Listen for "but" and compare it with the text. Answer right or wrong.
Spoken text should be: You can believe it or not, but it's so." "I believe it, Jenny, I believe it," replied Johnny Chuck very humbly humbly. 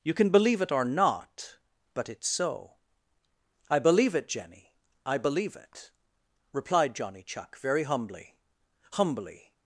right